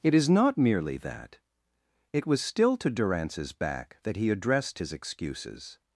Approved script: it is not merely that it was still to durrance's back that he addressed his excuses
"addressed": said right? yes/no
yes